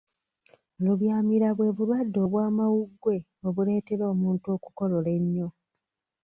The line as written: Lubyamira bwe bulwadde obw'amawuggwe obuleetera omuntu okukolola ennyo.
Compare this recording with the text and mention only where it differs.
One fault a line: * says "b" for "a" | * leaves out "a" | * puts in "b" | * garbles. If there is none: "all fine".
all fine